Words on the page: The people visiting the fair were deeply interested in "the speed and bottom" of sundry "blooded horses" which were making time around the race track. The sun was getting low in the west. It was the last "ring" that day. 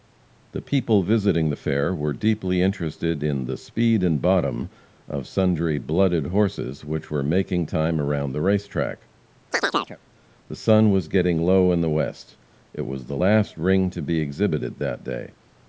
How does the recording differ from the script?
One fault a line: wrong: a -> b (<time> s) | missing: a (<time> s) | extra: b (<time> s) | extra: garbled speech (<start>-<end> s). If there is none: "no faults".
extra: to be exhibited (13.9 s)